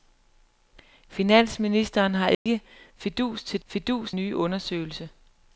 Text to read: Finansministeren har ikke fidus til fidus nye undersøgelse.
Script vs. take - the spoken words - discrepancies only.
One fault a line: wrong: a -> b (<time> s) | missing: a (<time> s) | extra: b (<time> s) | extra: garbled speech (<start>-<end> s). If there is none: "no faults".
no faults